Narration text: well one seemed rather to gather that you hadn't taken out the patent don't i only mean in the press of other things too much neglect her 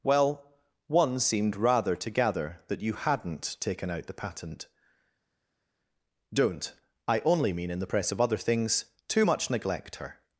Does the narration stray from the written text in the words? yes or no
no